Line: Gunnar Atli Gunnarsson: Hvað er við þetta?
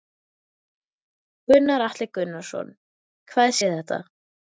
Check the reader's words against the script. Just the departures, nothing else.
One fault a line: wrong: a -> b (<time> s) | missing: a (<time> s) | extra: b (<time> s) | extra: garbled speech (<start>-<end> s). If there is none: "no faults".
no faults